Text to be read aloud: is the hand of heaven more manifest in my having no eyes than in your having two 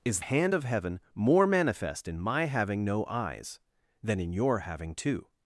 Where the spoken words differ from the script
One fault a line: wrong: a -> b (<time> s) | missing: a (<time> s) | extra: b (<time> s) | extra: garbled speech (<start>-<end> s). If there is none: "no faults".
missing: the (0.2 s)